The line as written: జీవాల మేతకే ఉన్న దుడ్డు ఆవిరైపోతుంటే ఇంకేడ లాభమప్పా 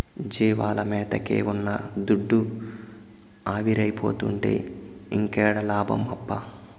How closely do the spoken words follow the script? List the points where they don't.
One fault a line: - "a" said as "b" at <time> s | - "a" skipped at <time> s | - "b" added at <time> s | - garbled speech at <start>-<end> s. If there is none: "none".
none